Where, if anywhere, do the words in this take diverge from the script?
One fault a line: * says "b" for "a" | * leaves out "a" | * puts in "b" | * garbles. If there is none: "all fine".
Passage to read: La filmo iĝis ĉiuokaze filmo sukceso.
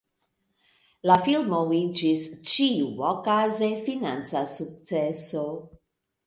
* says "financa" for "filmo"